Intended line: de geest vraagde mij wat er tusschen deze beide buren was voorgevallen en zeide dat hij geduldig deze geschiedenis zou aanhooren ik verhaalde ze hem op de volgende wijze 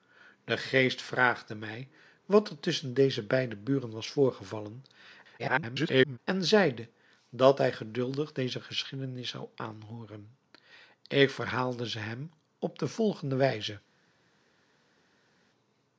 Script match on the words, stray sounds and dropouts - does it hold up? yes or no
no